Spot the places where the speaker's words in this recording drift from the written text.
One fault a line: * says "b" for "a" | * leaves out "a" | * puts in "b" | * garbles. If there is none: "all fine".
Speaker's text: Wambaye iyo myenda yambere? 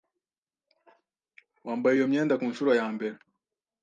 * puts in "kunshuro"